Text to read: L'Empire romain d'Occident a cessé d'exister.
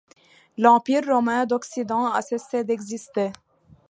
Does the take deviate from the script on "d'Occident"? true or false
false